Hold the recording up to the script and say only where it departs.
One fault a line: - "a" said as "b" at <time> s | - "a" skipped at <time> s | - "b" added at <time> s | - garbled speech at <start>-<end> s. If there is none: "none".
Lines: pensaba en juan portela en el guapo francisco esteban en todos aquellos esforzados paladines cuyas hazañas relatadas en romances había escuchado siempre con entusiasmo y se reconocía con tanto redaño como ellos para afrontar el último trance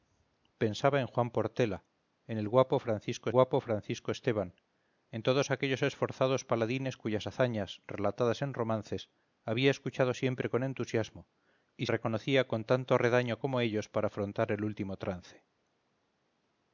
- "guapo francisco" added at 3.3 s
- "se" skipped at 11.9 s